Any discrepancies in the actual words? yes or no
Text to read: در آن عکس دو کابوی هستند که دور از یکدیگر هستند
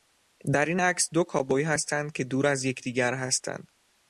yes